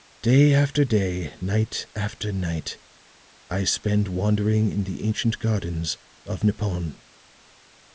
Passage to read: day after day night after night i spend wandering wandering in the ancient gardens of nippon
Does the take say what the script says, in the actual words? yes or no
no